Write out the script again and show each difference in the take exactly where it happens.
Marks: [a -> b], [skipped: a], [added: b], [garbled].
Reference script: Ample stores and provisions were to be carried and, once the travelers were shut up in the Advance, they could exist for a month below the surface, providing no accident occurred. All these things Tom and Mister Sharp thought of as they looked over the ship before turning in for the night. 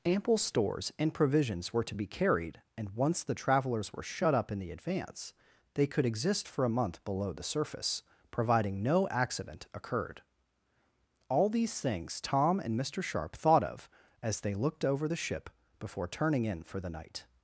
Ample stores and provisions were to be carried and, once the travelers were shut up in the Advance, they could exist for a month below the surface, providing no accident occurred. All these things Tom and Mister Sharp thought of as they looked over the ship before turning in for the night.